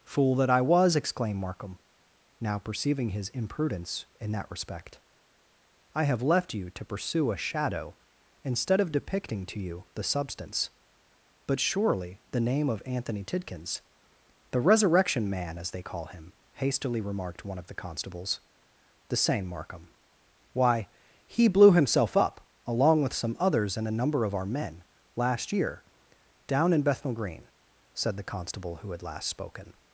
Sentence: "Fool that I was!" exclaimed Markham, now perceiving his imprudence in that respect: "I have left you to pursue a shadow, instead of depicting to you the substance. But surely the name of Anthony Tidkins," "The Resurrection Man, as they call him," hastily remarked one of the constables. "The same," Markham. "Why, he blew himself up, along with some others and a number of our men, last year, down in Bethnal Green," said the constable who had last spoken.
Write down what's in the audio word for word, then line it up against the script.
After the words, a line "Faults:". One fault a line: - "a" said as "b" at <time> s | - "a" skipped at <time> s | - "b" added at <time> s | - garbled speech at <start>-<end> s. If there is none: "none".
"Fool that I was!" exclaimed Markham, now perceiving his imprudence in that respect: "I have left you to pursue a shadow, instead of depicting to you the substance. But surely the name of Anthony Tidkins," "The Resurrection Man, as they call him," hastily remarked one of the constables. "The same," Markham. "Why, he blew himself up, along with some others and a number of our men, last year, down in Bethnal Green," said the constable who had last spoken.
Faults:
none